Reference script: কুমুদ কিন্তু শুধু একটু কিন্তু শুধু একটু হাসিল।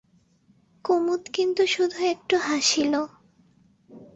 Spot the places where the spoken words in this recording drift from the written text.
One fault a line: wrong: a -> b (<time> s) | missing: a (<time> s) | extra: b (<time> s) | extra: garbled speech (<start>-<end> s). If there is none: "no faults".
missing: কিন্তু শুধু একটু (2.4 s)